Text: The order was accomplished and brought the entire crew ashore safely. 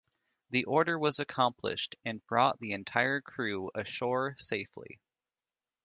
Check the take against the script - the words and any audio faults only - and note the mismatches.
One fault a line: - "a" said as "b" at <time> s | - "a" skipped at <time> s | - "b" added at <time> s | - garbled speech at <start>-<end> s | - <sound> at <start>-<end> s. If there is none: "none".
none